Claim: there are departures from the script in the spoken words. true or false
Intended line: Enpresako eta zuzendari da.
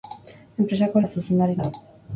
false